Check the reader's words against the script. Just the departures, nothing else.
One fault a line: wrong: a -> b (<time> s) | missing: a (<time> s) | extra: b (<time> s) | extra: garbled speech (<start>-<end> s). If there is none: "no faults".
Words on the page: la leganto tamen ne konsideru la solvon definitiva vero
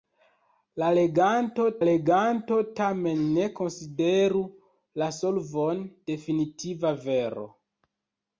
extra: leganto (1.9 s)